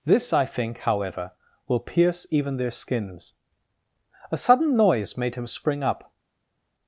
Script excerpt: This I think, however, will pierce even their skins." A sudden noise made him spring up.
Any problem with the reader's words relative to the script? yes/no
no